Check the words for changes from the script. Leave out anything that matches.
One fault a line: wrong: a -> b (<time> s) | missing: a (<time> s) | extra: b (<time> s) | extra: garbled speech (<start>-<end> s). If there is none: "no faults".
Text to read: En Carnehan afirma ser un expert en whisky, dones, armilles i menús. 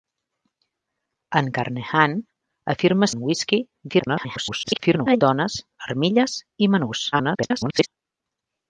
missing: ser un expert (3.1 s)
extra: garbled speech (3.9-5.2 s)
extra: garbled speech (7.1-7.9 s)